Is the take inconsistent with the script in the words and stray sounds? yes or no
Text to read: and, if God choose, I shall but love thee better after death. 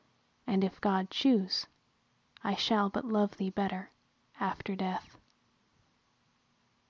no